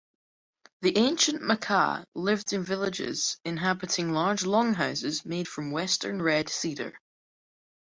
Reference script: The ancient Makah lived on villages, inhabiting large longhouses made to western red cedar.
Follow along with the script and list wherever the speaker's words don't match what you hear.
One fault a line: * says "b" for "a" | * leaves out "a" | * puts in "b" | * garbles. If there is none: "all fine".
* says "in" for "on"
* says "from" for "to"